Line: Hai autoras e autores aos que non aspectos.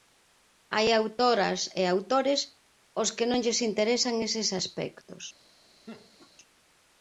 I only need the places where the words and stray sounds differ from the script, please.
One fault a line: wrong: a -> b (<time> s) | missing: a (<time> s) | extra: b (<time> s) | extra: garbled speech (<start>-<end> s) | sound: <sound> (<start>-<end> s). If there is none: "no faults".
extra: lles interesan eses (3.4 s)
sound: laugh (5.9-6.3 s)